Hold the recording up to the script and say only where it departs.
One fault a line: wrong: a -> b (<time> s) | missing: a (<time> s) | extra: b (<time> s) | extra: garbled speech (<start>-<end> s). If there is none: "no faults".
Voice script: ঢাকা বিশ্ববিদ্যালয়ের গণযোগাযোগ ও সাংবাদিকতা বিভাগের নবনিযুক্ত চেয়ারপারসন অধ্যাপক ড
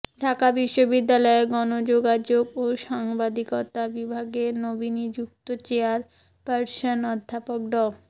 no faults